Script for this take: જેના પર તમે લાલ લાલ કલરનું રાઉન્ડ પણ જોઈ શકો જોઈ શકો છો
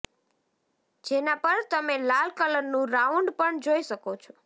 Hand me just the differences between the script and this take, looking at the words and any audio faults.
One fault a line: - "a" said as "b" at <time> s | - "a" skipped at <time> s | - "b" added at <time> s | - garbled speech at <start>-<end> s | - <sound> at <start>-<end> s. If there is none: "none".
- "લાલ" skipped at 2.3 s
- "જોઈ શકો" skipped at 4.2 s